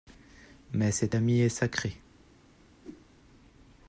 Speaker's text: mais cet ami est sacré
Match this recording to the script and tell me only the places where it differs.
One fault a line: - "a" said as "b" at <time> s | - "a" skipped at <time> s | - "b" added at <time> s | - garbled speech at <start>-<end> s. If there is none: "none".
none